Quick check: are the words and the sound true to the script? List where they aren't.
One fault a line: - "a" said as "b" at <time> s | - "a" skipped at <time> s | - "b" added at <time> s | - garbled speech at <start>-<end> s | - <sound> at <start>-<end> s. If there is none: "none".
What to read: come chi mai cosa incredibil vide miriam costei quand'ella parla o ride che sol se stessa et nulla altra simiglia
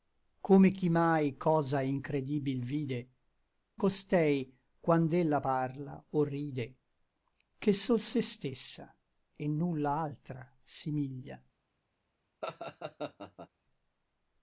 - "miriam" skipped at 3.1 s
- laugh at 12.4-13.5 s